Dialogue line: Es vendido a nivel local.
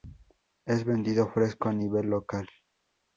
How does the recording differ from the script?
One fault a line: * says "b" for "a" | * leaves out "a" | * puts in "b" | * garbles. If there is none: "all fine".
* puts in "fresco"